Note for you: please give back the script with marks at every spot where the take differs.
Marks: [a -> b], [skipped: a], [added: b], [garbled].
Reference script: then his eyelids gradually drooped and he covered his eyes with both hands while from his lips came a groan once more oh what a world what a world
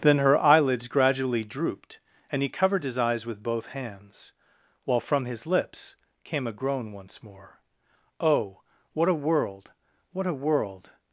then [his -> her] eyelids gradually drooped and he covered his eyes with both hands while from his lips came a groan once more oh what a world what a world